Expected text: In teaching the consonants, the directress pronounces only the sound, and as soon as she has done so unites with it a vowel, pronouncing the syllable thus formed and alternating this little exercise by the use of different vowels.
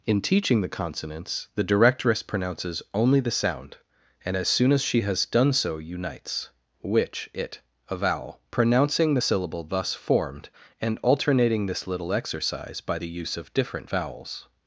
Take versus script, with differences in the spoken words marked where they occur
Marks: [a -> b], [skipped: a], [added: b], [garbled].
In teaching the consonants, the directress pronounces only the sound, and as soon as she has done so unites [with -> which] it a vowel, pronouncing the syllable thus formed and alternating this little exercise by the use of different vowels.